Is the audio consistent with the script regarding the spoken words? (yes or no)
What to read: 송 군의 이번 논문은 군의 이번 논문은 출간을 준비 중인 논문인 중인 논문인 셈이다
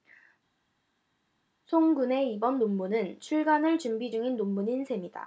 no